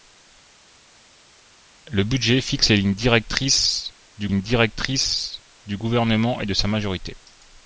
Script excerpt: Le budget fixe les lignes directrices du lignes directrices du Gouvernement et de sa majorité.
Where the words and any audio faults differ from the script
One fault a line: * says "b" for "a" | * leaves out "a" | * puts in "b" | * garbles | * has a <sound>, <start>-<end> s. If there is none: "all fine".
all fine